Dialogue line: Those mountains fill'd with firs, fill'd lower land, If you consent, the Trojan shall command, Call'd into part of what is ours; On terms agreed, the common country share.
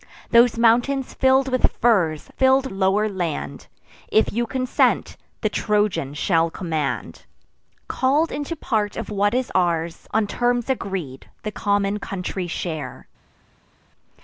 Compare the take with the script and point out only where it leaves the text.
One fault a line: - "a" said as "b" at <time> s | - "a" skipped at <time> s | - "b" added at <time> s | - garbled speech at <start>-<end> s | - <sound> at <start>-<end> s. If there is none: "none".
none